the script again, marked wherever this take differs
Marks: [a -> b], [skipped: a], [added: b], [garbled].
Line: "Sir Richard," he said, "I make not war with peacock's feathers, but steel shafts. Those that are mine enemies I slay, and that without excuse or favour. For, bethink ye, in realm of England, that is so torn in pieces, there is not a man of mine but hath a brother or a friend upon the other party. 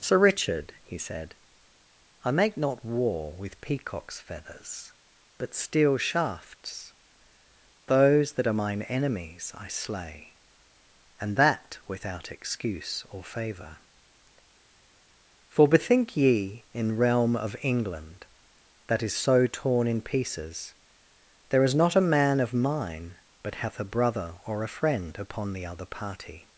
"Sir Richard," he said, "I make not war with peacock's feathers, but steel shafts. Those that are mine enemies I slay, and that without excuse or favour. For, bethink ye, in realm of England, that is so torn in pieces, there is not a man of mine but hath a brother or a friend upon the other party.